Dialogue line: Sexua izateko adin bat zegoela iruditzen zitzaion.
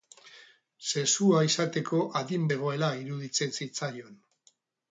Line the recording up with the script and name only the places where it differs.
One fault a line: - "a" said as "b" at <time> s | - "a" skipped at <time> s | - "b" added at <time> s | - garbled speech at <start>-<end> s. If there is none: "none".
- "bat" skipped at 2.5 s